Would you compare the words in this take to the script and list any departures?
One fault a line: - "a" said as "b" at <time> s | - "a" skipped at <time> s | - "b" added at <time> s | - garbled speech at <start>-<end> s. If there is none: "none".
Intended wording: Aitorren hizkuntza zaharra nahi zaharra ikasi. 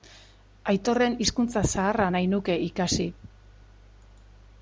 - "zaharra" said as "nuke" at 2.4 s